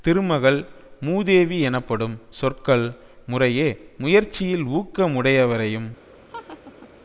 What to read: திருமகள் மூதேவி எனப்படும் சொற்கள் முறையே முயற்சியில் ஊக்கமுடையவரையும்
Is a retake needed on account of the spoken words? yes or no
no